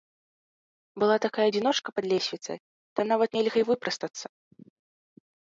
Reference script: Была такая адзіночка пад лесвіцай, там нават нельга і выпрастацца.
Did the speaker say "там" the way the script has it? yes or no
yes